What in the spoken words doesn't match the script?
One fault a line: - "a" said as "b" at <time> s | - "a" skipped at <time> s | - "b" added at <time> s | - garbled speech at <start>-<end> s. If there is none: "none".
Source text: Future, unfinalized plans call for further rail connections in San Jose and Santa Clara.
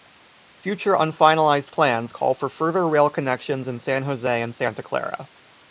none